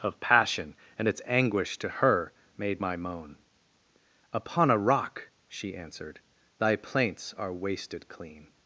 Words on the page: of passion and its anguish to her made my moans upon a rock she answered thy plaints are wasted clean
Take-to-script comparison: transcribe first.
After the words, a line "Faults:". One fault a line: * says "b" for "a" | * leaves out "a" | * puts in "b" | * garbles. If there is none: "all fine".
of passion and its anguish to her made my moan upon a rock she answered thy plaints are wasted clean
Faults:
* says "moan" for "moans"